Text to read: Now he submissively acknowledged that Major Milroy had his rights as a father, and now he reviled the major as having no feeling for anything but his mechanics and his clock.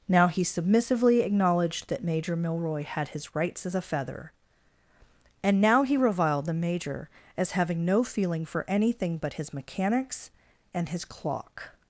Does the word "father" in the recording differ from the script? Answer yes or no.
yes